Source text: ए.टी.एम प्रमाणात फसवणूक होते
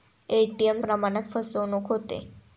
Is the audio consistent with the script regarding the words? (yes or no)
yes